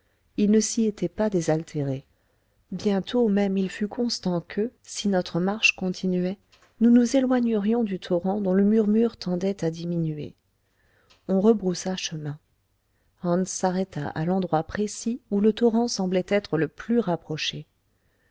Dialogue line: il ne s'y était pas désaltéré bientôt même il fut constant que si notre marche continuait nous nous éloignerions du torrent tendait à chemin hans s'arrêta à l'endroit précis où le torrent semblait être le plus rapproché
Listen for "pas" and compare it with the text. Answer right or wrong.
right